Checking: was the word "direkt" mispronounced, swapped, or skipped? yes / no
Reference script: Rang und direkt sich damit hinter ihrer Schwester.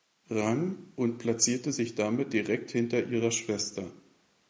yes